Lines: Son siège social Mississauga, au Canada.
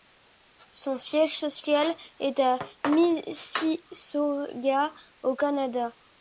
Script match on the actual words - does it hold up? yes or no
no